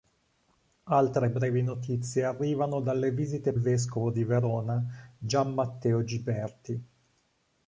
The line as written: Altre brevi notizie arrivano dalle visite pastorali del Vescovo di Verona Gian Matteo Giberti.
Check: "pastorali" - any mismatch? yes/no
yes